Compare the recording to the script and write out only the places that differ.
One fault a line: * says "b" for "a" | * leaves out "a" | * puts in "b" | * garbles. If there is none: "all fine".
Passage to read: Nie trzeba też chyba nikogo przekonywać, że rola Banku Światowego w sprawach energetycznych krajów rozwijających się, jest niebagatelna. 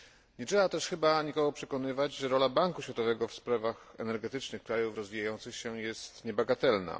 all fine